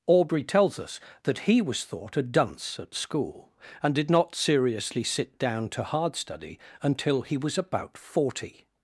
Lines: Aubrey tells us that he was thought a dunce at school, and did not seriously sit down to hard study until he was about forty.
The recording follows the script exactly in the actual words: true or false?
true